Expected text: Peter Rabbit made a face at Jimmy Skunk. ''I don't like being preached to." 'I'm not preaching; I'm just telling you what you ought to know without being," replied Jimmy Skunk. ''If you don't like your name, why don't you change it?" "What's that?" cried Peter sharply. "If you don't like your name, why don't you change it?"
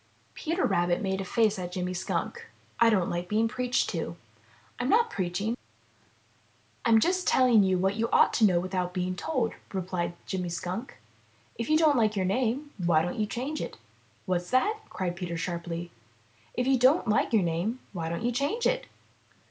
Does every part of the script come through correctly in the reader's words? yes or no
no